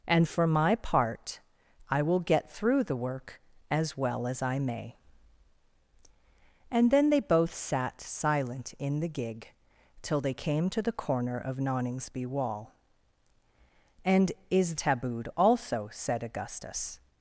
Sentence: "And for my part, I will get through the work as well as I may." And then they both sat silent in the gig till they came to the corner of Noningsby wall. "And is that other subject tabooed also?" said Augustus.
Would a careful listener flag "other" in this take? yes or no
yes